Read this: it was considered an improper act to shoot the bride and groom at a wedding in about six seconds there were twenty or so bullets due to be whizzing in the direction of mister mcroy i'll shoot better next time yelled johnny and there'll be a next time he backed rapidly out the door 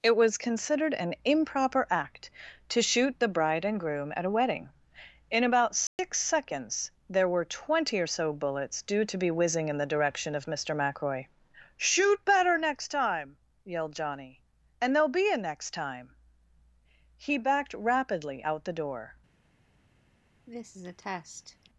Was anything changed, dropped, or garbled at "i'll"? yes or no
yes